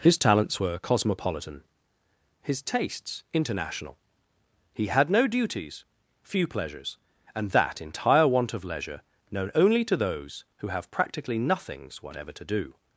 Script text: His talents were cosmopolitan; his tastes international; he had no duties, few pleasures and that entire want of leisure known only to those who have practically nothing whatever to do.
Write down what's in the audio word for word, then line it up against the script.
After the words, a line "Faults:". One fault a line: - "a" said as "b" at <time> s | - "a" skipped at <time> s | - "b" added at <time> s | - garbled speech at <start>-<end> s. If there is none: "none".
His talents were cosmopolitan; his tastes international; he had no duties, few pleasures and that entire want of leisure known only to those who have practically nothings whatever to do.
Faults:
- "nothing" said as "nothings" at 11.4 s